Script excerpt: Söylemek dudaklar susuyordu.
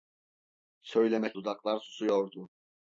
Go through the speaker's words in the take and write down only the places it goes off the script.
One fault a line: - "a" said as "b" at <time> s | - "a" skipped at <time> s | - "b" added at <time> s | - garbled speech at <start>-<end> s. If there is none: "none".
none